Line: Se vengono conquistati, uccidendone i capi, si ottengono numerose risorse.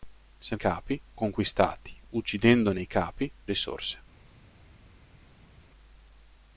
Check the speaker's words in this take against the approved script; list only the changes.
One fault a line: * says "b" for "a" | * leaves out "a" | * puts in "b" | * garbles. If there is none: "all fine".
* says "capi" for "vengono"
* leaves out "si ottengono numerose"